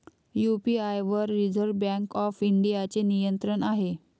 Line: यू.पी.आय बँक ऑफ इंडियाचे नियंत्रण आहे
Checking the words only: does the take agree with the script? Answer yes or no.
no